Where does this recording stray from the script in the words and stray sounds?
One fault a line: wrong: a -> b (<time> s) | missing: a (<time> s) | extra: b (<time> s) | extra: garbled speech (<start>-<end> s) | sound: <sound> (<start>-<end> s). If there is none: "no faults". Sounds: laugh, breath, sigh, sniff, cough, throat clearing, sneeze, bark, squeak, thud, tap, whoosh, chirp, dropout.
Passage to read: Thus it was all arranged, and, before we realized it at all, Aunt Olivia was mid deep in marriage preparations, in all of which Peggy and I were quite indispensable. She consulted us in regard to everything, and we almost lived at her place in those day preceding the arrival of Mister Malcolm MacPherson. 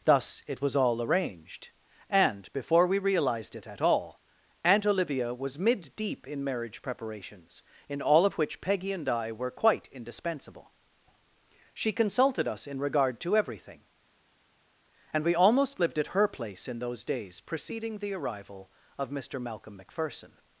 wrong: day -> days (17.0 s)